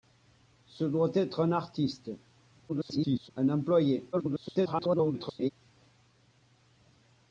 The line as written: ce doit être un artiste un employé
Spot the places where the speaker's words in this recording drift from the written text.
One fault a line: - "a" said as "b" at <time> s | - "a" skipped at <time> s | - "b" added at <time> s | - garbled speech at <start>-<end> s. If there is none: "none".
- garbled speech at 2.7-3.3 s
- garbled speech at 4.1-5.5 s